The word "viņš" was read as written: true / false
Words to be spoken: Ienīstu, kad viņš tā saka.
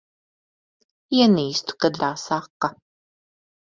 false